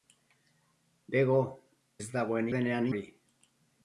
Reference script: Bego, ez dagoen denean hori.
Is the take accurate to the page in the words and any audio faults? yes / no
yes